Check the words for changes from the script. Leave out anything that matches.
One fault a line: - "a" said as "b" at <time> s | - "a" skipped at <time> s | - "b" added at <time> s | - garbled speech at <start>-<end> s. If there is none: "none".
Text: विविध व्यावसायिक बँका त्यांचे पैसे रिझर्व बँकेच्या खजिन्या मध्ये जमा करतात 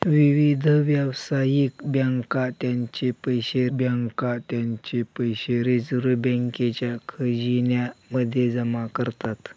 - "बँका त्यांचे पैसे" added at 3.7 s